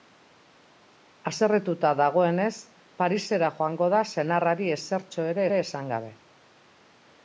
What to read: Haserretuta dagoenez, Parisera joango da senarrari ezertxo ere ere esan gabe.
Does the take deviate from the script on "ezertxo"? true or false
false